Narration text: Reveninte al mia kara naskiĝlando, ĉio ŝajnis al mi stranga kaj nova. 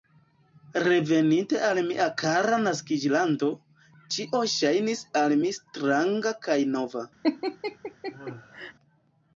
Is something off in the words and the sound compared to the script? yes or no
yes